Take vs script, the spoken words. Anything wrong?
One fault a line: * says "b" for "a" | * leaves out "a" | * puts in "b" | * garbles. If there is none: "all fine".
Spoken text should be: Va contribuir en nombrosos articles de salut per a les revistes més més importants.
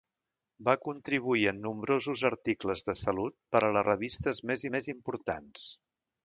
all fine